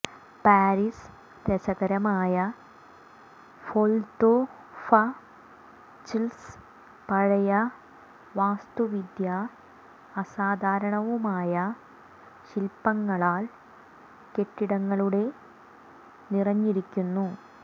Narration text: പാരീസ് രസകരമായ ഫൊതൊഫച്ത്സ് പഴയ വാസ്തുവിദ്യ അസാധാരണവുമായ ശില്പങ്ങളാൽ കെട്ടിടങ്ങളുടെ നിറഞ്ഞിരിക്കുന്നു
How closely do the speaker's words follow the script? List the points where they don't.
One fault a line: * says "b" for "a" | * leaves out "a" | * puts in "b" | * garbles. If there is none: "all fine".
all fine